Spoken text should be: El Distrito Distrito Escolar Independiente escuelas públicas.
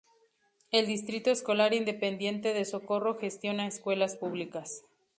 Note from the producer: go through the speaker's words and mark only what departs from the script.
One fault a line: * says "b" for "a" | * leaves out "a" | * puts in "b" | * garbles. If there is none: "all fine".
* leaves out "Distrito"
* puts in "de Socorro gestiona"